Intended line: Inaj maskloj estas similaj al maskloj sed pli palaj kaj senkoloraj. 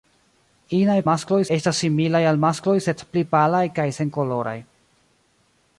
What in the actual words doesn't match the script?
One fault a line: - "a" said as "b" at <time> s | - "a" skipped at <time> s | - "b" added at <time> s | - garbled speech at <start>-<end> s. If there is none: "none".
none